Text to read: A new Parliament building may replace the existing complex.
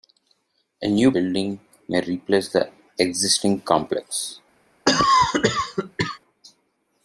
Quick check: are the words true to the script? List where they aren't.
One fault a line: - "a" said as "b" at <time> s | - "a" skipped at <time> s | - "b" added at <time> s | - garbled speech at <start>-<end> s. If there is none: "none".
- "Parliament" skipped at 1.1 s